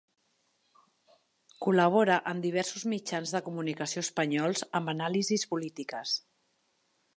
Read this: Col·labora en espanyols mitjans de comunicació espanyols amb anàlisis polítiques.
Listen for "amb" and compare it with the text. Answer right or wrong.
right